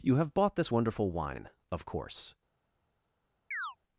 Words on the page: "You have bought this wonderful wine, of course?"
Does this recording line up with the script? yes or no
yes